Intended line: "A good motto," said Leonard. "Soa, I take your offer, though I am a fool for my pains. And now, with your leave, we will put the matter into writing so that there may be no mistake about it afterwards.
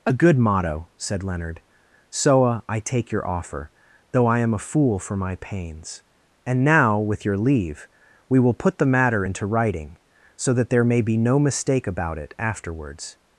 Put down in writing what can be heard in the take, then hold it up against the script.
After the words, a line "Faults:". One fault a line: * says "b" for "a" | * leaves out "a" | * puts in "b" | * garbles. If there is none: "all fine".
"A good motto," said Leonard. "Soa, I take your offer, though I am a fool for my pains. And now, with your leave, we will put the matter into writing so that there may be no mistake about it afterwards.
Faults:
all fine